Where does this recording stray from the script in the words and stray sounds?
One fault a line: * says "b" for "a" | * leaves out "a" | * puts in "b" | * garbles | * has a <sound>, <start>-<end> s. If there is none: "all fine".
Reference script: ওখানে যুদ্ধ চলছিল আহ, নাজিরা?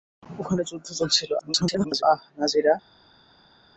* garbles